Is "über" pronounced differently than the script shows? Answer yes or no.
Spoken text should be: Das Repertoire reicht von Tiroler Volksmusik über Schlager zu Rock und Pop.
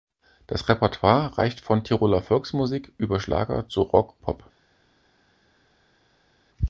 no